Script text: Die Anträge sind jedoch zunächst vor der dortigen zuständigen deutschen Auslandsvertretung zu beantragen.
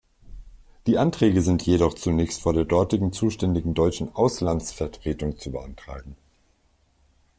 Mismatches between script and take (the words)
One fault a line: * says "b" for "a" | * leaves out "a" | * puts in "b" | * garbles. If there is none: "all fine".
all fine